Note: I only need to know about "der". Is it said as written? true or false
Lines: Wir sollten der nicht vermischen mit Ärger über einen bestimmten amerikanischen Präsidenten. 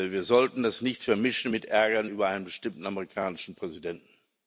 false